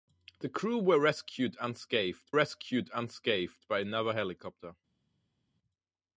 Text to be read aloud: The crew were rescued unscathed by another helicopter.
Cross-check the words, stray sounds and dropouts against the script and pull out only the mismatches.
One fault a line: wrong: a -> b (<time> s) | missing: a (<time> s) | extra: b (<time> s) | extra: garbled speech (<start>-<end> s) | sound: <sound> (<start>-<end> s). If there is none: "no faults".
extra: rescued unscathed (2.3 s)